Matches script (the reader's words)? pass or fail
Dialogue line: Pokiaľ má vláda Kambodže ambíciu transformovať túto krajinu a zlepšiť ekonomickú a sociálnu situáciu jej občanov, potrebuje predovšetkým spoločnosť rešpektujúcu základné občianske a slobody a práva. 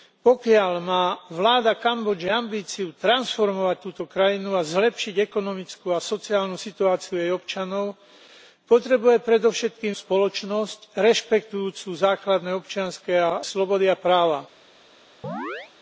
pass